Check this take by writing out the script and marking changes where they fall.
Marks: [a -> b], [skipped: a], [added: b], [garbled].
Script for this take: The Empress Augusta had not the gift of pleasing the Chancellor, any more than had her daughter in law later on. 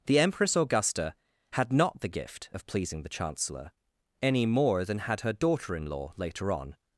The Empress Augusta had not the gift of pleasing the Chancellor, any more than had her daughter in law later on.